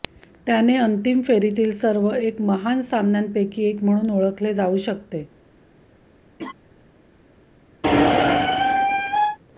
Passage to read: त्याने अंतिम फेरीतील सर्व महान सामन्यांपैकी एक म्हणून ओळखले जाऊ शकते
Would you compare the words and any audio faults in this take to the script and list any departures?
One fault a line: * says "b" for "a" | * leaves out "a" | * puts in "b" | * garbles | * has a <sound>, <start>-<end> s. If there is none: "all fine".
* puts in "एक"
* has a laugh, 6.4-6.5 s
* has a squeak, 7.8-9.4 s